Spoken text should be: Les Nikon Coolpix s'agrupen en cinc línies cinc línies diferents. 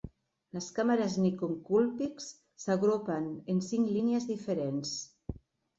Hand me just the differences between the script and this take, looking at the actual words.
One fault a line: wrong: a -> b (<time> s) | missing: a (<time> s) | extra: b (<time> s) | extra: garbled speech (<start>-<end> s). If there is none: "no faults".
extra: càmeres (0.8 s)
missing: cinc línies (4.3 s)